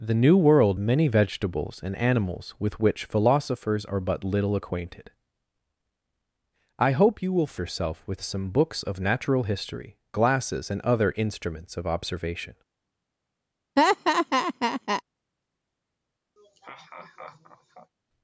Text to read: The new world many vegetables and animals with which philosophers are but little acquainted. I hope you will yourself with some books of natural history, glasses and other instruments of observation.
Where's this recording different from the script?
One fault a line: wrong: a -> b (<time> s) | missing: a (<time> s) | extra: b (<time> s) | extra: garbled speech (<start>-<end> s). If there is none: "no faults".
no faults